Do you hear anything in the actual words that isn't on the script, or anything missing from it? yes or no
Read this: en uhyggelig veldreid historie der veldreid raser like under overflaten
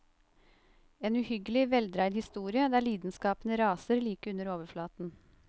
yes